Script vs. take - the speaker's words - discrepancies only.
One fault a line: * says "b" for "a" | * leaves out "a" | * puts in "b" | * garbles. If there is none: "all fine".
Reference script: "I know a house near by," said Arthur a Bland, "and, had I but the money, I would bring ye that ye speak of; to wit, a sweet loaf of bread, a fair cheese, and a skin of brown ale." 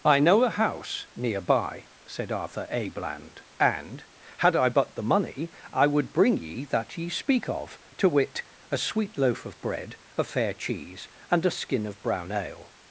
all fine